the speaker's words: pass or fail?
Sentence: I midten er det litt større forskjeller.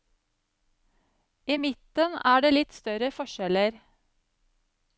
pass